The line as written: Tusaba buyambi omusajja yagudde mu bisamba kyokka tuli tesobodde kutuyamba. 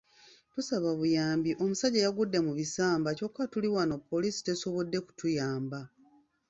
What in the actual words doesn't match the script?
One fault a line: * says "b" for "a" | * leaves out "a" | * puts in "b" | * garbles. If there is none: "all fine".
* puts in "wano poliisi"